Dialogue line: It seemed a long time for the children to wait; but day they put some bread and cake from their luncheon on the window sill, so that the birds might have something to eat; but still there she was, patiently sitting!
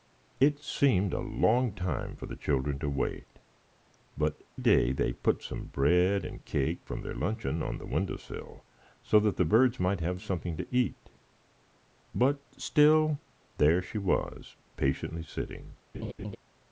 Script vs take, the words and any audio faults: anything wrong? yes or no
yes